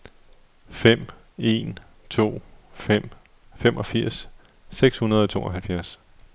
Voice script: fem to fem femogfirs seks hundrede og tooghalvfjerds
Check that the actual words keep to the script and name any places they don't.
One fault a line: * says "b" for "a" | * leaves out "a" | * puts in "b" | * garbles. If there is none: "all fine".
* puts in "en"